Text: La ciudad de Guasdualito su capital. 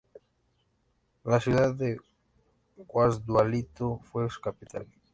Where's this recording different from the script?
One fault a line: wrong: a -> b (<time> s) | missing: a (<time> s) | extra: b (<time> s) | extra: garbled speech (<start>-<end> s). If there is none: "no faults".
extra: fue (4.0 s)